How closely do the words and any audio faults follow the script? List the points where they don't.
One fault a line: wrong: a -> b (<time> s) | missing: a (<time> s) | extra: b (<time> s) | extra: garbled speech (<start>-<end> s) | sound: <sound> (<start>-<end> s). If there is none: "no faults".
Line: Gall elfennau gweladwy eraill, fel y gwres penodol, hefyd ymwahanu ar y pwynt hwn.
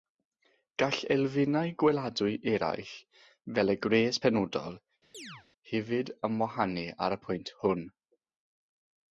sound: chirp (5.1-5.5 s)